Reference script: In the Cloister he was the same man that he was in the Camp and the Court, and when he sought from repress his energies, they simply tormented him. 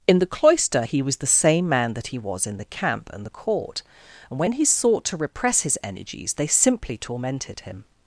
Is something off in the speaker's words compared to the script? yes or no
yes